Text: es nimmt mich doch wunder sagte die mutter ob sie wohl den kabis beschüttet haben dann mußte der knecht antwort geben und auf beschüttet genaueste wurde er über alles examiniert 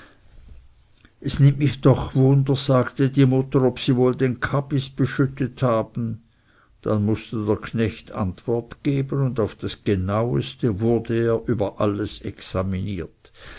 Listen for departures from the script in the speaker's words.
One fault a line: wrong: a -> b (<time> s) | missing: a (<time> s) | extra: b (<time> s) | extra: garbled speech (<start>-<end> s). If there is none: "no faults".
wrong: beschüttet -> das (9.6 s)